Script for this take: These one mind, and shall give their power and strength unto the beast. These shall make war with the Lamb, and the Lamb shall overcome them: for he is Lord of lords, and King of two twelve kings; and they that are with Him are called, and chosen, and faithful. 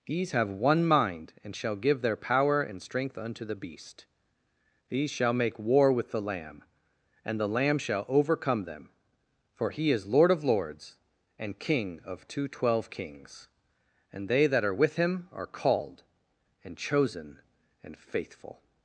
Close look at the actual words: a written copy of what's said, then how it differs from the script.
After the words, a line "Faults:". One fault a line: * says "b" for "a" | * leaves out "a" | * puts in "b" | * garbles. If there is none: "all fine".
These have one mind, and shall give their power and strength unto the beast. These shall make war with the Lamb, and the Lamb shall overcome them: for he is Lord of lords, and King of two twelve kings; and they that are with Him are called, and chosen, and faithful.
Faults:
* puts in "have"